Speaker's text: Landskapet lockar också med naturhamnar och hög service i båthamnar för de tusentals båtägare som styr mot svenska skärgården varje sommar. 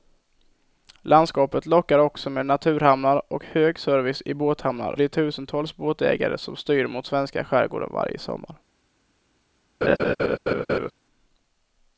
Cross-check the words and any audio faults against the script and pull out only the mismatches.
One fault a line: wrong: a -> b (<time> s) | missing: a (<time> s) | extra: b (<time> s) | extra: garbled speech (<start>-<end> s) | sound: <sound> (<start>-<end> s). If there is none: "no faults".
missing: för (4.9 s)
sound: laugh (9.8-10.9 s)